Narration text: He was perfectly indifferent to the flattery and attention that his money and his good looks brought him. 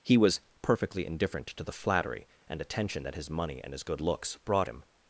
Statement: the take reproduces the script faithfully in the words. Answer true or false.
true